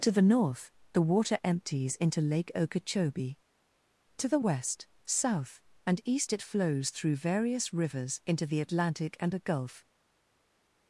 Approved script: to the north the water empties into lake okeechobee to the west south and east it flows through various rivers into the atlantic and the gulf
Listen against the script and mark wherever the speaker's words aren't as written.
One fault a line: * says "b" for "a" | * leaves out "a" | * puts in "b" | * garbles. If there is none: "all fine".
* says "a" for "the"